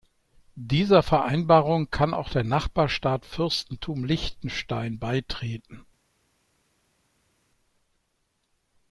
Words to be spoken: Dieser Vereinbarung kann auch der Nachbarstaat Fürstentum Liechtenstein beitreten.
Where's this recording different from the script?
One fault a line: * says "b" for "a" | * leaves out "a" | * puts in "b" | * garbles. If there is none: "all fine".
all fine